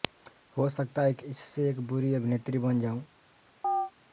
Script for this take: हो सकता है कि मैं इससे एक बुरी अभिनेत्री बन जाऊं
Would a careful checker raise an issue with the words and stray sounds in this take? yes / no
yes